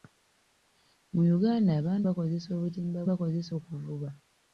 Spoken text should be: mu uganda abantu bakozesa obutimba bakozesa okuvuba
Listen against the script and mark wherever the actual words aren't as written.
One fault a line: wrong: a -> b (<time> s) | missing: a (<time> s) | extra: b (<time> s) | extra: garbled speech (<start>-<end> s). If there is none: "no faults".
no faults